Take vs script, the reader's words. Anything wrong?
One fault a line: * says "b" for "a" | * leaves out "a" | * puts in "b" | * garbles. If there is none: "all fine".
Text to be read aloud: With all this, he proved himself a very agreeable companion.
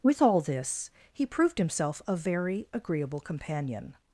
all fine